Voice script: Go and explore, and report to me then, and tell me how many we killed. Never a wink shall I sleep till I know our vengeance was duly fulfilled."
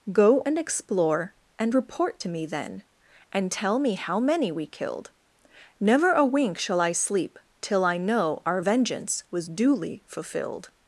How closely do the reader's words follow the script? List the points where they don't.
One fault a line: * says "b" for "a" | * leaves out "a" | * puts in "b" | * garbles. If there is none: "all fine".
all fine